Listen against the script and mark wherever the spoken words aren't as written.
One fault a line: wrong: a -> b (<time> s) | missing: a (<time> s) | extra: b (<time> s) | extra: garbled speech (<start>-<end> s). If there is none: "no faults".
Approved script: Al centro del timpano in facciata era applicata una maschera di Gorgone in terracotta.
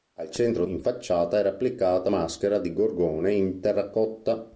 missing: del timpano (0.7 s)
missing: una (2.1 s)